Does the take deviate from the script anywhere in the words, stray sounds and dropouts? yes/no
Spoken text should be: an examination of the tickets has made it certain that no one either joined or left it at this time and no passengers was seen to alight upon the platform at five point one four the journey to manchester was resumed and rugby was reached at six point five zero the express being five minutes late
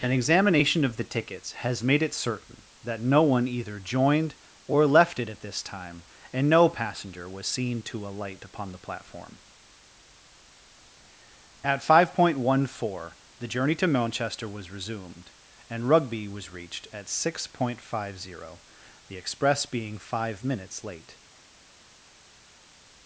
yes